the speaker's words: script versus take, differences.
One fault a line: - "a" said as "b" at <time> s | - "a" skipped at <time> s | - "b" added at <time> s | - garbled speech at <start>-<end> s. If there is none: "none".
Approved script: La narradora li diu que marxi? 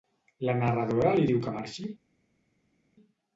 none